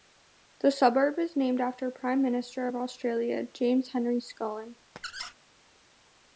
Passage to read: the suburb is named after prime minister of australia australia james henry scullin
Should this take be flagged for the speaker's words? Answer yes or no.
yes